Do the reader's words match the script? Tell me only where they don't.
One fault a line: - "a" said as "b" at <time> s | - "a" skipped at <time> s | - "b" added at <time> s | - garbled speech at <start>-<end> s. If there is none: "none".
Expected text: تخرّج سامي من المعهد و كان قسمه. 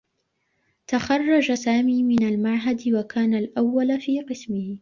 - "الأوّل في" added at 3.3 s